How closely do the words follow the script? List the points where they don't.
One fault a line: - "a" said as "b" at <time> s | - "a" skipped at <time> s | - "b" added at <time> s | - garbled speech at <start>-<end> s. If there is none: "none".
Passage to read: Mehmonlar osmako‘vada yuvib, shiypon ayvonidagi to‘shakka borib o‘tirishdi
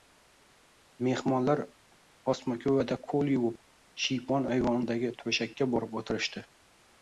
- "qo‘l" added at 3.1 s